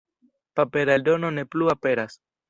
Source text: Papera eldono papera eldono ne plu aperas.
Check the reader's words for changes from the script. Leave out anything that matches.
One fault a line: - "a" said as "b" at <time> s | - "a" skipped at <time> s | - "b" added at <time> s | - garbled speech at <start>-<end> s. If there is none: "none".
- "papera eldono" skipped at 1.3 s